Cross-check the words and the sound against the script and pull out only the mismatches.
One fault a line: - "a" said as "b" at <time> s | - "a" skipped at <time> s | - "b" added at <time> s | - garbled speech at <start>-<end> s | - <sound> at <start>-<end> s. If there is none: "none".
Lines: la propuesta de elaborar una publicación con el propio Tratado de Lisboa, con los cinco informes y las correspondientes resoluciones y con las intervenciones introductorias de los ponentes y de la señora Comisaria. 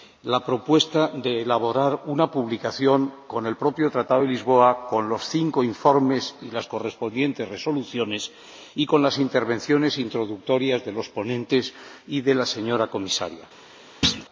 - thud at 14.0-14.3 s